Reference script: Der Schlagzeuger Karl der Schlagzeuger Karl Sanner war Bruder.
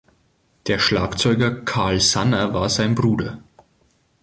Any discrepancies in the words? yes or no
yes